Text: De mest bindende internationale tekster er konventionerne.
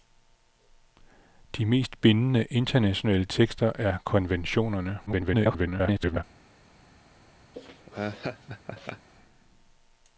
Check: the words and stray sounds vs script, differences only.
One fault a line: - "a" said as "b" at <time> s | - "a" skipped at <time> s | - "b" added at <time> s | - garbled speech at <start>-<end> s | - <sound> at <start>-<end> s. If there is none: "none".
- garbled speech at 5.1-6.2 s
- laugh at 7.5-9.1 s